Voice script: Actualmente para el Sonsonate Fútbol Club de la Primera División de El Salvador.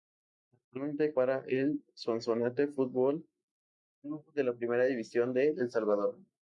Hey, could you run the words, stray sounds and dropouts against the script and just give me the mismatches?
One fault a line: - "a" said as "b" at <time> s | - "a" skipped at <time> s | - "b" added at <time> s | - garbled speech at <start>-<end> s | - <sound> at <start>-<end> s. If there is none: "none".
none